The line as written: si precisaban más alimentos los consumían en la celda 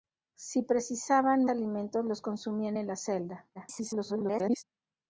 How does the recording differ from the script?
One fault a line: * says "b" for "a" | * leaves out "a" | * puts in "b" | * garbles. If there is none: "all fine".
* leaves out "más"
* garbles